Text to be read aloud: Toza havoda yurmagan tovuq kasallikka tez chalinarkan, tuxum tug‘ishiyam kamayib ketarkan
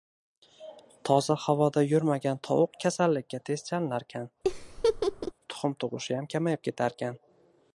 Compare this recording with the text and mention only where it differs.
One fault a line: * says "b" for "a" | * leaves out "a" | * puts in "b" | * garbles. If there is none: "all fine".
all fine